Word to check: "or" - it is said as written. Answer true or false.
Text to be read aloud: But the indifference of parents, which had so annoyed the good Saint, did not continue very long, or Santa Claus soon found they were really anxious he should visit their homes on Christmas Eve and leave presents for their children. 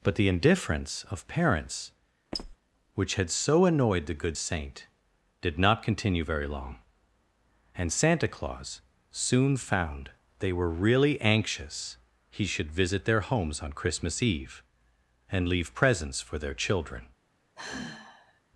false